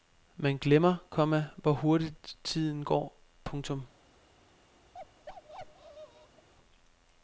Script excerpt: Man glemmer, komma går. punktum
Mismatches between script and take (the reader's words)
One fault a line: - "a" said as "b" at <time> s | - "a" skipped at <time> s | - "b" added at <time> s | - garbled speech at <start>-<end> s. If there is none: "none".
- "hvor hurtigt tiden" added at 1.6 s